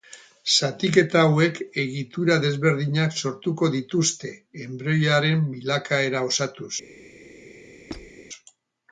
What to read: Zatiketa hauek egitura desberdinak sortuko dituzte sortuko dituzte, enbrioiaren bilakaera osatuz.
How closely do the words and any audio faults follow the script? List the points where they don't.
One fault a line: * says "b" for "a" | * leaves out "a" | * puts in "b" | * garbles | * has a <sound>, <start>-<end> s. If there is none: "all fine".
* leaves out "sortuko dituzte"
* has a squeak, 7.9-8.1 s